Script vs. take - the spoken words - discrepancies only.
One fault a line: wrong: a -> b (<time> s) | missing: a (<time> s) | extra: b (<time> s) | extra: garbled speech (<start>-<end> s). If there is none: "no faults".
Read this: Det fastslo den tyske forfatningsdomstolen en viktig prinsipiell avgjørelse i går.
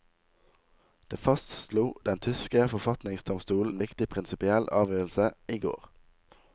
no faults